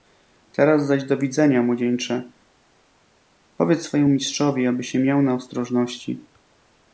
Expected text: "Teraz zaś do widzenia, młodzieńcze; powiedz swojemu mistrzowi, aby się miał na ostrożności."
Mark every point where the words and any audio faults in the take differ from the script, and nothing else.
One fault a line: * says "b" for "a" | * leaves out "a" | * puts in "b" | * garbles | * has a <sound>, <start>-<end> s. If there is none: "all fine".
all fine